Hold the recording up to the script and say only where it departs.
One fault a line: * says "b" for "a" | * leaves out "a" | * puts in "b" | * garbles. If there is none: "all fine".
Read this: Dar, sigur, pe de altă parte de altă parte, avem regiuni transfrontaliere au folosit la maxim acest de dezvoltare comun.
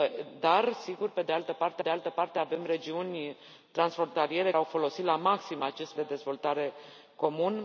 all fine